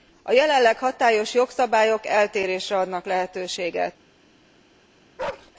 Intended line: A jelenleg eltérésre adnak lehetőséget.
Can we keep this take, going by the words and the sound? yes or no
no